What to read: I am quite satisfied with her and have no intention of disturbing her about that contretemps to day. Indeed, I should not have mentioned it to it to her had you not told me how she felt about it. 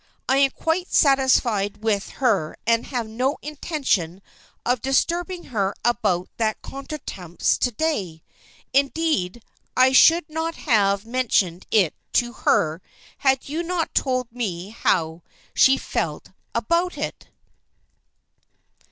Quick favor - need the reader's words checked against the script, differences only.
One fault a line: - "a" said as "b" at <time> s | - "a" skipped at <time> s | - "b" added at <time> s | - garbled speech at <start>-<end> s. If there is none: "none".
- "it to" skipped at 12.3 s